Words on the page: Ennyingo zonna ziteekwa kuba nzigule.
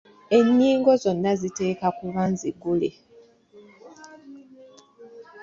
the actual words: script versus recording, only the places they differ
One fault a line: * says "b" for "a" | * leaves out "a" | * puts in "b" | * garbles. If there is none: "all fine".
all fine